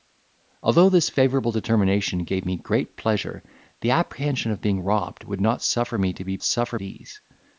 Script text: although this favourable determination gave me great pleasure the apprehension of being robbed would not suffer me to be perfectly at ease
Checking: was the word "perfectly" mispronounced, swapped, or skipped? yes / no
yes